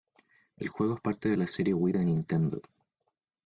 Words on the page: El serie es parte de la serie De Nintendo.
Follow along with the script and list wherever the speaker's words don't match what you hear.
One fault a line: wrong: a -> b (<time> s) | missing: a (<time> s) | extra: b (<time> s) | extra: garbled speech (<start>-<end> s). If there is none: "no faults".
wrong: serie -> juego (0.7 s)
extra: Wii (1.7 s)